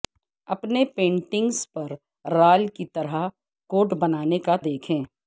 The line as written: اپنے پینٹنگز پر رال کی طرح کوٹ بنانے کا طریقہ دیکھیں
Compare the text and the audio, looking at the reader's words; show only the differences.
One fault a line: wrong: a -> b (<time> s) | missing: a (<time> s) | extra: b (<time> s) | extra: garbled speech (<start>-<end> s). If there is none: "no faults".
missing: طریقہ (4.5 s)